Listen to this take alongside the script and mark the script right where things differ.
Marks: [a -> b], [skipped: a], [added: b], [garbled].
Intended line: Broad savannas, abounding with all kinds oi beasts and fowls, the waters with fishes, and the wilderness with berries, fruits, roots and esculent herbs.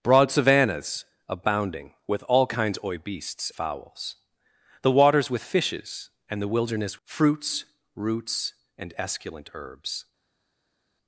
Broad savannas, abounding with all kinds oi beasts [skipped: and] fowls, the waters with fishes, and the wilderness [skipped: with berries,] fruits, roots and esculent herbs.